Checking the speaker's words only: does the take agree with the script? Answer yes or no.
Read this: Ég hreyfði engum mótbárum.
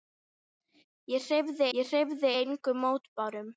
no